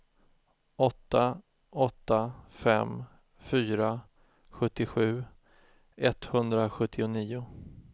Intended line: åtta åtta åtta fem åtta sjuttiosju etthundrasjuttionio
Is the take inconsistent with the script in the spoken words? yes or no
yes